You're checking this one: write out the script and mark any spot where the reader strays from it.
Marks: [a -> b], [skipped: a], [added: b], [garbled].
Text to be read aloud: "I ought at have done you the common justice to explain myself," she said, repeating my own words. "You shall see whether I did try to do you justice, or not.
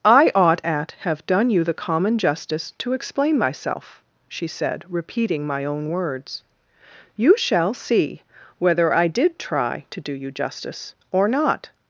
"I ought at have done you the common justice to explain myself," she said, repeating my own words. "You shall see whether I did try to do you justice, or not.